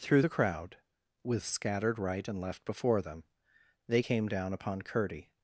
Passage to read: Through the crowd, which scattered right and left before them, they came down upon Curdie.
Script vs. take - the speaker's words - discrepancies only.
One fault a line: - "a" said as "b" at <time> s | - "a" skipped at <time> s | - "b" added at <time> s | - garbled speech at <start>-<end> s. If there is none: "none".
- "which" said as "with" at 1.2 s